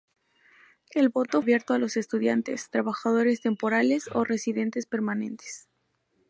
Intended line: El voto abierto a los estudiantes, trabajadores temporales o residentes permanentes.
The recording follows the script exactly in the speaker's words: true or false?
true